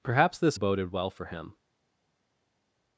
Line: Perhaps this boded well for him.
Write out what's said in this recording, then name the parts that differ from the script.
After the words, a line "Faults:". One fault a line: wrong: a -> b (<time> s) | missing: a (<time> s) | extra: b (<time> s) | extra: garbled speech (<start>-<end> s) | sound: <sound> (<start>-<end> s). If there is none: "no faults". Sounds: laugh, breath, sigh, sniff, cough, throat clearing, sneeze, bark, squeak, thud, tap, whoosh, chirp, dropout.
Perhaps this boded well for him.
Faults:
no faults